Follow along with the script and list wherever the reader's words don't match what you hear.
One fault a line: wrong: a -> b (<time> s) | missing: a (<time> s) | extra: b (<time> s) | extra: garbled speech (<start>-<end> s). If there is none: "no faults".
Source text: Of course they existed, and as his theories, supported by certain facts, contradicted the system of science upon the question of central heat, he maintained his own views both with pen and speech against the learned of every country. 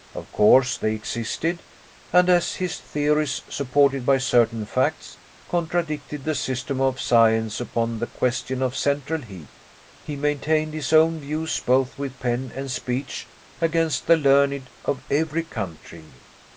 no faults